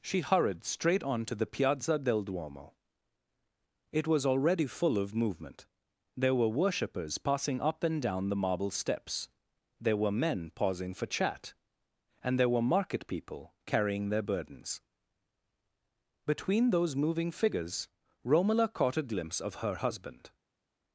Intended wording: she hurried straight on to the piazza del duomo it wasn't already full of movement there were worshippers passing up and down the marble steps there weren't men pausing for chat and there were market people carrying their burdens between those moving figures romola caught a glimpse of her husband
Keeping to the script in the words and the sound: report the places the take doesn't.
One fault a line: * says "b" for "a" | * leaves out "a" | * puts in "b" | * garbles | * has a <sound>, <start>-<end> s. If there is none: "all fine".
* says "was" for "wasn't"
* says "were" for "weren't"